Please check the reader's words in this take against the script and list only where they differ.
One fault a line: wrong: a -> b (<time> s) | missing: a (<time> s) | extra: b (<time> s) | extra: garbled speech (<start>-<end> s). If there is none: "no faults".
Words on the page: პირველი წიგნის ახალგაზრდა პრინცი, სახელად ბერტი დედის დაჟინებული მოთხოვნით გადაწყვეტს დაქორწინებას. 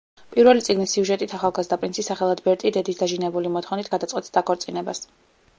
extra: სიუჟეტით (0.9 s)